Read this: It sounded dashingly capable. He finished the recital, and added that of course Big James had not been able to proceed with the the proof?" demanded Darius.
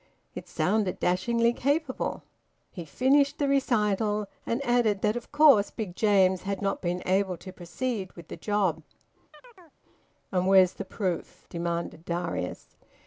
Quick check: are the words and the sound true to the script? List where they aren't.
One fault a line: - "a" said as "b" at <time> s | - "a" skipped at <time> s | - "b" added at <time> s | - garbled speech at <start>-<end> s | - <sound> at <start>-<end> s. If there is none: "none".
- "job And where's" added at 8.4 s
- chirp at 9.3-9.8 s